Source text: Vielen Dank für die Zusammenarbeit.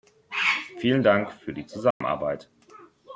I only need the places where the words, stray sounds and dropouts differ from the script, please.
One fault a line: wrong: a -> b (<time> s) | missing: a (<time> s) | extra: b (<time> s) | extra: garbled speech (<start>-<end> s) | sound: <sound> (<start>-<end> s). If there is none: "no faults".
sound: dropout (1.9-2.0 s)